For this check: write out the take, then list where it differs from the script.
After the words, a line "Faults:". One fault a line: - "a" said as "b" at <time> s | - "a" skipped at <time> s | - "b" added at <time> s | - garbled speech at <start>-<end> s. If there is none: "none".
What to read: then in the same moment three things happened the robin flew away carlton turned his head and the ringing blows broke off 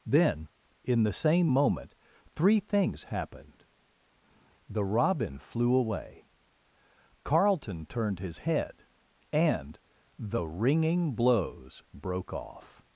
then in the same moment three things happened the robin flew away carlton turned his head and the ringing blows broke off
Faults:
none